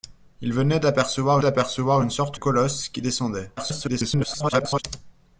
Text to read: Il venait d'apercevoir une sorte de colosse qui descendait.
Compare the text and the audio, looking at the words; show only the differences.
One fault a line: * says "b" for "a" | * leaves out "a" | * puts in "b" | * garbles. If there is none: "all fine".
* puts in "d'apercevoir"
* leaves out "de"
* garbles